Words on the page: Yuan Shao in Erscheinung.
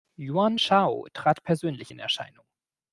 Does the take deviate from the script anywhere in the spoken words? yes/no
yes